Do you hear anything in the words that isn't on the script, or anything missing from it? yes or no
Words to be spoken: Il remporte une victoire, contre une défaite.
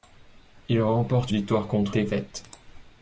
yes